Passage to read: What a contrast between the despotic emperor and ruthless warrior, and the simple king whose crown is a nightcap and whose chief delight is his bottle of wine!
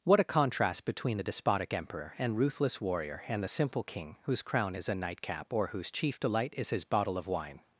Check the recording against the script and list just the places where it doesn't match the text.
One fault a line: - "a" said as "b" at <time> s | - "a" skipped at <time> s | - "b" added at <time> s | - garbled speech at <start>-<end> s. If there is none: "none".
- "and" said as "or" at 5.5 s